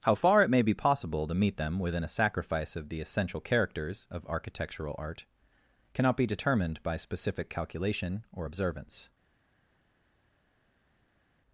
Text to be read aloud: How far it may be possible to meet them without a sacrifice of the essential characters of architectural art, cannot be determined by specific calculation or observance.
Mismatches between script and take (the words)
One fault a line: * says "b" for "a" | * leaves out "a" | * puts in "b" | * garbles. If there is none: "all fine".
* says "within" for "without"